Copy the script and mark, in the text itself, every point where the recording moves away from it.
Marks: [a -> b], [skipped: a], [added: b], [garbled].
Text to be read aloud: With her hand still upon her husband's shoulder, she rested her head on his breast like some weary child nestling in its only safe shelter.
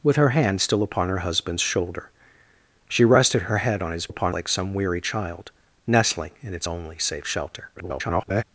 With her hand still upon her husband's shoulder, she rested her head on his [breast -> upon] like some weary child nestling in its only safe shelter. [garbled]